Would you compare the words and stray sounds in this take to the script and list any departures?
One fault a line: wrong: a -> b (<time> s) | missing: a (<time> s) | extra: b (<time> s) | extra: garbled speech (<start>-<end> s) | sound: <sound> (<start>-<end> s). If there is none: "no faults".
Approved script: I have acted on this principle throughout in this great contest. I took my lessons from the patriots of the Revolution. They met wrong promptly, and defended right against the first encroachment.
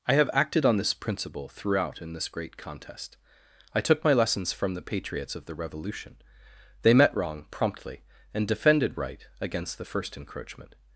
no faults